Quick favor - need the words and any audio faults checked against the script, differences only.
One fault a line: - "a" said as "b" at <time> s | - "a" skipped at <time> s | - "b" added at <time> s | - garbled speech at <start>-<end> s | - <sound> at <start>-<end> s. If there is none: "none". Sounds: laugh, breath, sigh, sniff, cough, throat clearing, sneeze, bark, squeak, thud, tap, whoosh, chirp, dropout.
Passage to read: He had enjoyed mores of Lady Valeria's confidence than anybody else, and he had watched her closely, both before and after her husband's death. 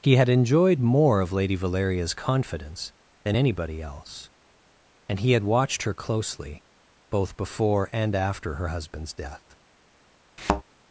- "mores" said as "more" at 0.8 s
- thud at 10.4-10.6 s